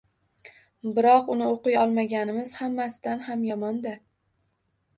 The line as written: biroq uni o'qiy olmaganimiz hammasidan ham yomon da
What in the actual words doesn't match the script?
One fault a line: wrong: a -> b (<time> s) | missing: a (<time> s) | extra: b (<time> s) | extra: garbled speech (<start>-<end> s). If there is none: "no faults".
no faults